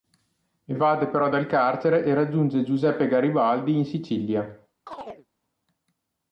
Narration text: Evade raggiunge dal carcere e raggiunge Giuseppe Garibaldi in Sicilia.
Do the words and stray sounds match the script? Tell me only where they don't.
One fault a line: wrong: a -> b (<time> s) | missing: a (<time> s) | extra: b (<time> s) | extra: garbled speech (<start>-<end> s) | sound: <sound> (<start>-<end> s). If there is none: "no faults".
wrong: raggiunge -> però (1.1 s)
sound: chirp (4.9-5.3 s)